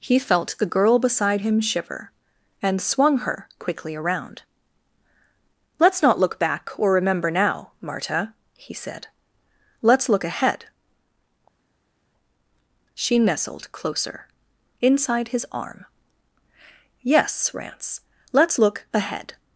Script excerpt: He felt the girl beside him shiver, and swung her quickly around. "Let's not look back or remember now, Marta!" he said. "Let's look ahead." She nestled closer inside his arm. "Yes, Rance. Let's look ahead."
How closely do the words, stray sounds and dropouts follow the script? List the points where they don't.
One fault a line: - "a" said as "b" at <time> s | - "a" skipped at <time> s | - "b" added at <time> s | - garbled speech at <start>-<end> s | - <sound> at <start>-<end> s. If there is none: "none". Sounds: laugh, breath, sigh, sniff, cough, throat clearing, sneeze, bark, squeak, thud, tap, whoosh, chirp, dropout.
none